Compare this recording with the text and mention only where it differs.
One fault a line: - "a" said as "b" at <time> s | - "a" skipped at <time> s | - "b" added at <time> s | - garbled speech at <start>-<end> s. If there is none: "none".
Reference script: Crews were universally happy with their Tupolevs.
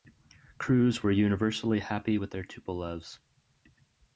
none